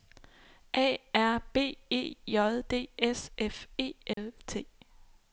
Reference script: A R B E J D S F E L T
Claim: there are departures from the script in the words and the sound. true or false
true